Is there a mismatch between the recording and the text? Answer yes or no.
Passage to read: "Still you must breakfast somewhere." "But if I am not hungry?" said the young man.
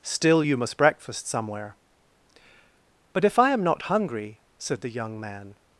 no